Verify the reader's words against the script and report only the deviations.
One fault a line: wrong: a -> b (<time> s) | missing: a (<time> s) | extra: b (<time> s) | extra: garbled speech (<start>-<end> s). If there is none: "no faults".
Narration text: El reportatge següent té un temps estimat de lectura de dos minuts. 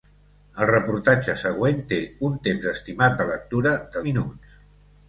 missing: dos (4.1 s)